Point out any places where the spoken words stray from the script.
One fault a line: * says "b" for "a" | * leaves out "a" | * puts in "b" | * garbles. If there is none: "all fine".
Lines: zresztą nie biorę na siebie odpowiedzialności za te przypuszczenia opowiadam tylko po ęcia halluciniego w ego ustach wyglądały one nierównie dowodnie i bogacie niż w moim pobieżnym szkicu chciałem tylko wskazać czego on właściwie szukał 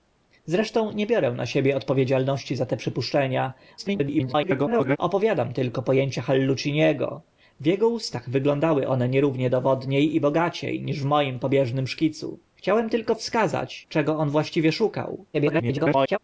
* garbles
* garbles